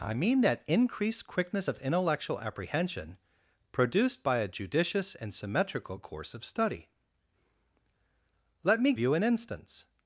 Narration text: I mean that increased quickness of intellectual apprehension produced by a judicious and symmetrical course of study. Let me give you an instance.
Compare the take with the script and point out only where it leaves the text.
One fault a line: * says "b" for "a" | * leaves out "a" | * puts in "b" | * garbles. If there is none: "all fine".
* leaves out "give"